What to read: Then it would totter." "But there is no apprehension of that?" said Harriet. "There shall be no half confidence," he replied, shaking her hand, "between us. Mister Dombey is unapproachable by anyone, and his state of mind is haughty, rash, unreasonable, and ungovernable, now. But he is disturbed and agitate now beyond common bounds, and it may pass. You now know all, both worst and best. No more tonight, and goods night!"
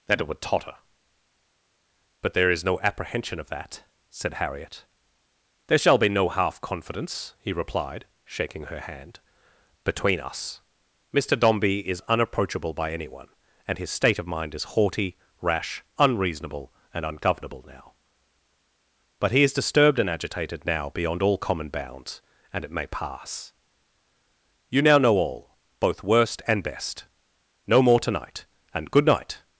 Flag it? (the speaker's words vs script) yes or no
yes